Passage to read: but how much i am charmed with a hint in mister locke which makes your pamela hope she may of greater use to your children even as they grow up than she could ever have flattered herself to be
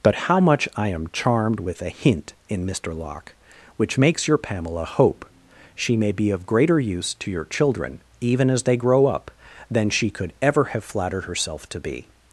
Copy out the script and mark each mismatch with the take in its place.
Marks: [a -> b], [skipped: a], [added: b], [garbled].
but how much i am charmed with a hint in mister locke which makes your pamela hope she may [added: be] of greater use to your children even as they grow up than she could ever have flattered herself to be